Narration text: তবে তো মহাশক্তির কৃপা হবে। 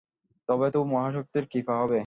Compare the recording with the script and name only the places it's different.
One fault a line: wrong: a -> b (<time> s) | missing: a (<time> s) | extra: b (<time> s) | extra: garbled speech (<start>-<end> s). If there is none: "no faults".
no faults